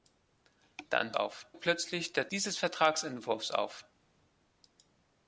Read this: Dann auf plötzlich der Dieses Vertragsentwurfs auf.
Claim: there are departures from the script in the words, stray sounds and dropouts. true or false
false